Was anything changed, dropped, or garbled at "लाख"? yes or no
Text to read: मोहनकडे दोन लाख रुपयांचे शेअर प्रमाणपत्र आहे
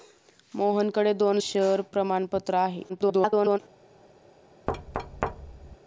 yes